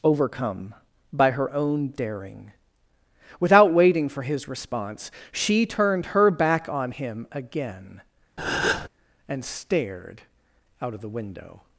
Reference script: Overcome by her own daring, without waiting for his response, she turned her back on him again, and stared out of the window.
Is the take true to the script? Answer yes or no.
yes